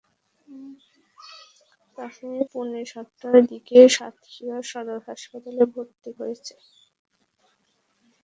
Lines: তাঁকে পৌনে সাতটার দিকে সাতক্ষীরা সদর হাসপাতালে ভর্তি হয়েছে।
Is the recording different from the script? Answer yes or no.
no